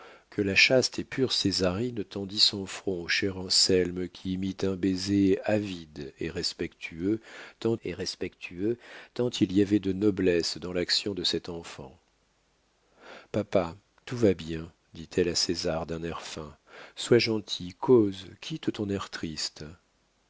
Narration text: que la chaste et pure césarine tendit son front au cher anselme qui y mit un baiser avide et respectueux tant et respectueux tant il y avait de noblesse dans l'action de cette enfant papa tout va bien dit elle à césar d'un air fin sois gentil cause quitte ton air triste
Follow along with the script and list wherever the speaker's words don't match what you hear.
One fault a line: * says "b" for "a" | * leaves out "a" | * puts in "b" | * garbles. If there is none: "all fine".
all fine